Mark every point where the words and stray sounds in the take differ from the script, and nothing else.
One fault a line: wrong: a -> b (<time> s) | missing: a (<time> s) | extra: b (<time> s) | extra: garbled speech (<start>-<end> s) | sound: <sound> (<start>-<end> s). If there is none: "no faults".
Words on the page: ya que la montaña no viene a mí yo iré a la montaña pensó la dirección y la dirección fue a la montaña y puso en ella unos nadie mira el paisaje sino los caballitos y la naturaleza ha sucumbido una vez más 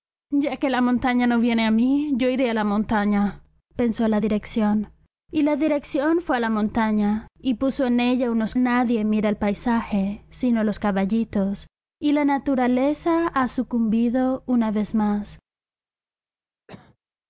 sound: cough (16.7-17.0 s)